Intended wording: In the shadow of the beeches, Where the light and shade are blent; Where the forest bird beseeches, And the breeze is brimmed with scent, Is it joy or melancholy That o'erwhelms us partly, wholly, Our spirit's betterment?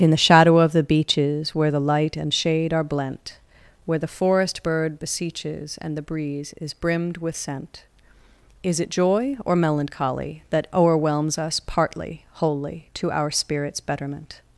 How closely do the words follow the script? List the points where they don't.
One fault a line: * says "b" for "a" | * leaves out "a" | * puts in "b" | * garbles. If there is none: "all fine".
* puts in "To"